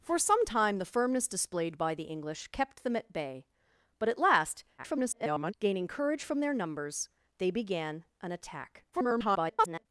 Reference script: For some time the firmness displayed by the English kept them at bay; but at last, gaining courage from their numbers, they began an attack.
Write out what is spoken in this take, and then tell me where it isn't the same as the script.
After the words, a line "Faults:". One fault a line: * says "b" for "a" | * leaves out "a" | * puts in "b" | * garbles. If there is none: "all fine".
For some time the firmness displayed by the English kept them at bay; but at last, [garbled] gaining courage from their numbers, they began an attack. [garbled]
Faults:
* garbles
* garbles